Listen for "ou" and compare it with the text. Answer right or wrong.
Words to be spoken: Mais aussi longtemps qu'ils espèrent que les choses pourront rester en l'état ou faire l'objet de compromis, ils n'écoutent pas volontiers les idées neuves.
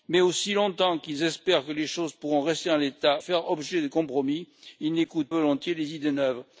wrong